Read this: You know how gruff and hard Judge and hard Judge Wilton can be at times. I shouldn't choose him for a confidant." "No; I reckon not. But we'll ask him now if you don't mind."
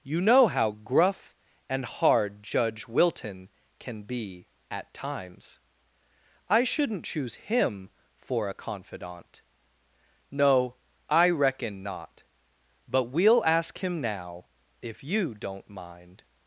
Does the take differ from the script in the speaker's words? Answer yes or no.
yes